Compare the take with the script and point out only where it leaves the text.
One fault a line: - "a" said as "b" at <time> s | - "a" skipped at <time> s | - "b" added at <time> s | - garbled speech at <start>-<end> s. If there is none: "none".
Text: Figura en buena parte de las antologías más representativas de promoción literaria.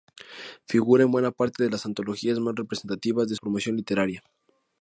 none